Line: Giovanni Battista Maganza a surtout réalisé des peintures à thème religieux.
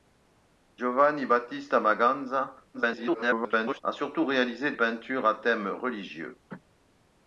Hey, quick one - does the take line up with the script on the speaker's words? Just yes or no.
no